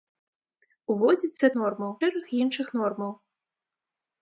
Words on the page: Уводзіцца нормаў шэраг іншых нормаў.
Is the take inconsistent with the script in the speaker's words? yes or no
no